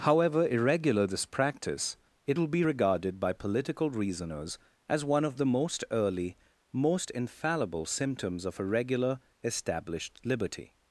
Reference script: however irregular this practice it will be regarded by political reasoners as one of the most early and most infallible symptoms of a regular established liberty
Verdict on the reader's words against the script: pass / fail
fail